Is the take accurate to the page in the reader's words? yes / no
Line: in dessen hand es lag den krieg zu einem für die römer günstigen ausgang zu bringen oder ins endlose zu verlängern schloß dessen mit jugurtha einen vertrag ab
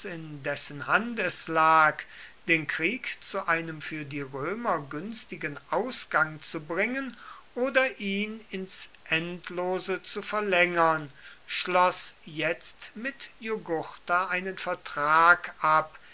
no